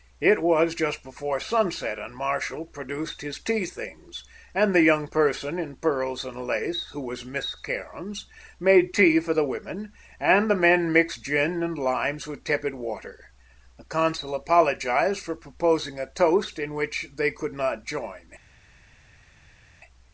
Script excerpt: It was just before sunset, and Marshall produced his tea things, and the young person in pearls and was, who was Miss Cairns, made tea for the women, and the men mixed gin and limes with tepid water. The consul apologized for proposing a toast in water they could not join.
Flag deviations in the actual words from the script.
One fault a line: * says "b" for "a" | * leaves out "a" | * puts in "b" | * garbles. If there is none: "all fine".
* says "lace" for "was"
* says "which" for "water"